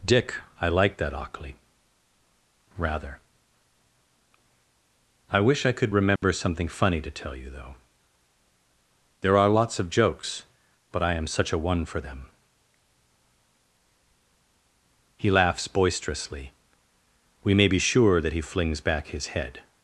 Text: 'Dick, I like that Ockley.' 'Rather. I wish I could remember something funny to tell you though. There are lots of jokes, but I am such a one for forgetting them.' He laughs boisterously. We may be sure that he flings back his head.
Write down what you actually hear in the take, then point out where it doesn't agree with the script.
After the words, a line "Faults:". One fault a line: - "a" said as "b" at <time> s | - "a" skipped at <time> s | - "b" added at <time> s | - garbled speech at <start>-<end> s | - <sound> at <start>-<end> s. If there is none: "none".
'Dick, I like that Ockley.' 'Rather. I wish I could remember something funny to tell you though. There are lots of jokes, but I am such a one for them.' He laughs boisterously. We may be sure that he flings back his head.
Faults:
- dropout at 6.2-6.2 s
- "forgetting" skipped at 12.0 s